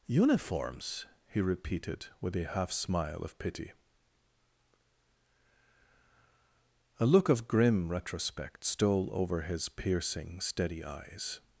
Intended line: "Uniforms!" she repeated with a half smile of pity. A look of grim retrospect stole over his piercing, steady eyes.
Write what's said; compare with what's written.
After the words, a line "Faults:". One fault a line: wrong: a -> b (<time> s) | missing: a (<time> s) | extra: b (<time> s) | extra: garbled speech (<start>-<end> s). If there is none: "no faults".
"Uniforms!" he repeated with a half smile of pity. A look of grim retrospect stole over his piercing, steady eyes.
Faults:
wrong: she -> he (1.3 s)